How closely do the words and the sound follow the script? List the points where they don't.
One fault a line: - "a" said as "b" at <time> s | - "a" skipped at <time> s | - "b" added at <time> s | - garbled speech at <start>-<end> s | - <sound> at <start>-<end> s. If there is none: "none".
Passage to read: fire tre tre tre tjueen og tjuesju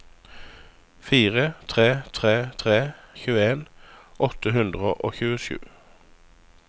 - "åtte hundre" added at 4.3 s